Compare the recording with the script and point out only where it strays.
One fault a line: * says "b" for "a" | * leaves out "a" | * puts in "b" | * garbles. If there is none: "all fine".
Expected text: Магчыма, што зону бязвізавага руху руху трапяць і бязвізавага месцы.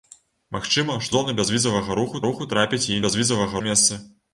all fine